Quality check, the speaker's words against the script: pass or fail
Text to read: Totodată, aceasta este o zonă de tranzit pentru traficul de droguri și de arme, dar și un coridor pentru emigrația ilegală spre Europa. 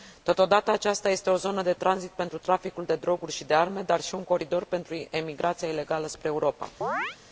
pass